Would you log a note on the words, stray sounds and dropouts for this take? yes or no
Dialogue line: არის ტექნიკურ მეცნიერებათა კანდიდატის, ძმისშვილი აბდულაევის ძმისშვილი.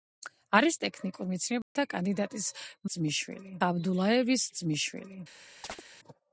yes